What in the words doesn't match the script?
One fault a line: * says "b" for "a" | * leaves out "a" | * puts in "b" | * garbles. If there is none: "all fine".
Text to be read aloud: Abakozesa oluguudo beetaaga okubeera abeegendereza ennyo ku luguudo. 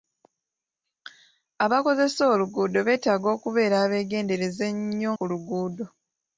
all fine